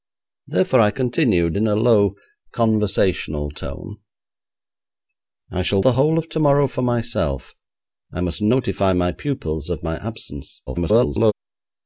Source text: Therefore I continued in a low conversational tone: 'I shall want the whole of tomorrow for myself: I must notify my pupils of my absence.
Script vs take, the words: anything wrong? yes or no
yes